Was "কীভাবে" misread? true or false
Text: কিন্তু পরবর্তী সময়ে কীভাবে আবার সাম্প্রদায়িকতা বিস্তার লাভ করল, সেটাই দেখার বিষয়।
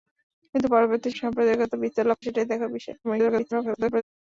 true